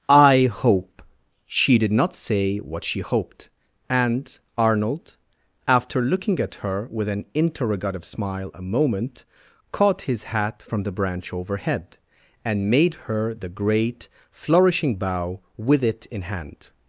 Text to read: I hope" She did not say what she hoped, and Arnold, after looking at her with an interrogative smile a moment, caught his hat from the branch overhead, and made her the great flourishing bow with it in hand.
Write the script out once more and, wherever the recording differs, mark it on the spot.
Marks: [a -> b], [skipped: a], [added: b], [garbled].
I hope" She did not say what she hoped, and Arnold, after looking at her with an interrogative smile a moment, caught his hat from the branch overhead, and made her the great flourishing bow with it in hand.